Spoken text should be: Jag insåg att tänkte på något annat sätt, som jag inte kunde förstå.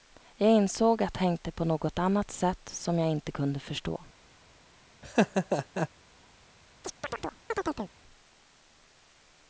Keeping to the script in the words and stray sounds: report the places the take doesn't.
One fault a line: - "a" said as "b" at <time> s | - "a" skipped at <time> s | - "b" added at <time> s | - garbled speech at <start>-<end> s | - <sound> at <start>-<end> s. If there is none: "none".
- laugh at 5.0-5.9 s
- chirp at 6.8-7.9 s